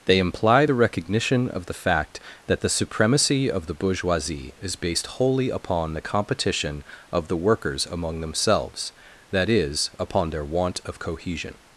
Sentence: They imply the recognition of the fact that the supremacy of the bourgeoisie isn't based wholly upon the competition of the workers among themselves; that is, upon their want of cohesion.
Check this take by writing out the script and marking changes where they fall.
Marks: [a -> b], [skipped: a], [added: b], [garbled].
They imply the recognition of the fact that the supremacy of the bourgeoisie [isn't -> is] based wholly upon the competition of the workers among themselves; that is, upon their want of cohesion.